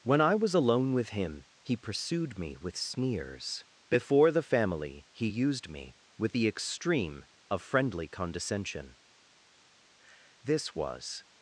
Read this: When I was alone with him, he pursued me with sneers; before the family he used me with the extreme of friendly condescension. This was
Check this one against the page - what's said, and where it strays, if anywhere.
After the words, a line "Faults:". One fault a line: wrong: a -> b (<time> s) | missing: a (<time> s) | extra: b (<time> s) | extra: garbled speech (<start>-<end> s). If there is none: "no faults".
When I was alone with him, he pursued me with sneers; before the family he used me with the extreme of friendly condescension. This was
Faults:
no faults